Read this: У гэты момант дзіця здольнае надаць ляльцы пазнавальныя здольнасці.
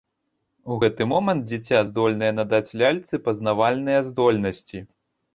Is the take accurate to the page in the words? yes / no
yes